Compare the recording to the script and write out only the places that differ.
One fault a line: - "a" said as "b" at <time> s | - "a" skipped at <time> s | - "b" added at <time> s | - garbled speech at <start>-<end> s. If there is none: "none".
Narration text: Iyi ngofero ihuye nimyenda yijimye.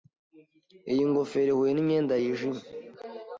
none